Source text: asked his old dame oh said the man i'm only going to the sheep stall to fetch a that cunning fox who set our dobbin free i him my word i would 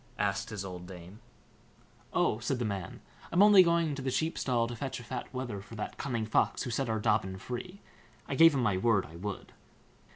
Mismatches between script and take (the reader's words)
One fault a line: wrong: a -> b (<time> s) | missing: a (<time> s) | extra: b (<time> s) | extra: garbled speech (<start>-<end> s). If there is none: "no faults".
extra: fat wether for (5.0 s)
extra: gave (8.3 s)